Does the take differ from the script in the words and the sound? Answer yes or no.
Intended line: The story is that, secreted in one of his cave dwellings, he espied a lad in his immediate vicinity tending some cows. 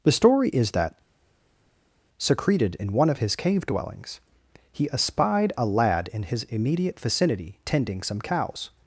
no